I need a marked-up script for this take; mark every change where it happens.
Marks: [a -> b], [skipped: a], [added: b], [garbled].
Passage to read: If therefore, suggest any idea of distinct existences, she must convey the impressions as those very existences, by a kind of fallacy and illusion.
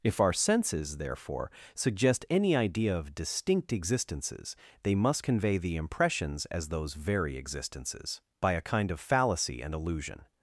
If [added: our senses] therefore, suggest any idea of distinct existences, [she -> they] must convey the impressions as those very existences, by a kind of fallacy and illusion.